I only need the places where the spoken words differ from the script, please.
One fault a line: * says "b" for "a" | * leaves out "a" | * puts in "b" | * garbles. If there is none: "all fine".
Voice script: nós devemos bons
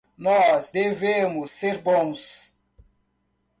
* puts in "ser"